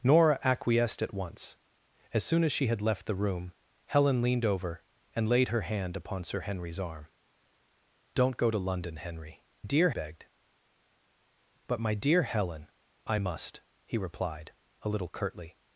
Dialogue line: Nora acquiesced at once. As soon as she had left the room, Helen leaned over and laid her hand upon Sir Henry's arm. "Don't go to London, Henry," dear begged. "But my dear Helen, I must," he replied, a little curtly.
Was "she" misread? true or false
false